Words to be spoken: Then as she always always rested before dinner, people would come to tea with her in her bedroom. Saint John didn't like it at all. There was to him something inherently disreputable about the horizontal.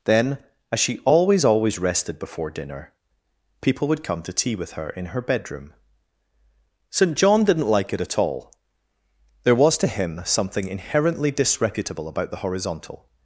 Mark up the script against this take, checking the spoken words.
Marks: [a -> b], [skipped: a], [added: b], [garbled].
Then as she always always rested before dinner, people would come to tea with her in her bedroom. Saint John didn't like it at all. There was to him something inherently disreputable about the horizontal.